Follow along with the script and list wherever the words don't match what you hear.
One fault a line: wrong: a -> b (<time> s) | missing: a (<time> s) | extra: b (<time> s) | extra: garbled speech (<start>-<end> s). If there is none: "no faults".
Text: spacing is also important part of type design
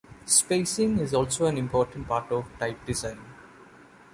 extra: an (1.4 s)